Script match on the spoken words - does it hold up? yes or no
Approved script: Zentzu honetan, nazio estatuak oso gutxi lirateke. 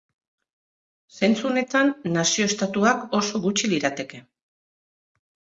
yes